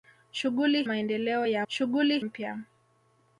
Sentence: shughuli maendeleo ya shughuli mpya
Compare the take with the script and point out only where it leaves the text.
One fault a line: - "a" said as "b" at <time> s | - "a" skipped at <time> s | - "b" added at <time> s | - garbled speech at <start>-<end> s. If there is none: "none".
none